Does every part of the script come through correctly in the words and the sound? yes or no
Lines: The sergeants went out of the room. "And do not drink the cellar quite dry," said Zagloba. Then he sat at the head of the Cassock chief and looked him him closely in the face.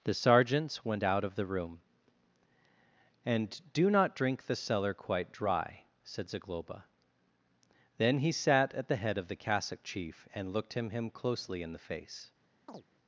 no